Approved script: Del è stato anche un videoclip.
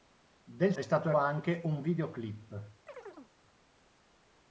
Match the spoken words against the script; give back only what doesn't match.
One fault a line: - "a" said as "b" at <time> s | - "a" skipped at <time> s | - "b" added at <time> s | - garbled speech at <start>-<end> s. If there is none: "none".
none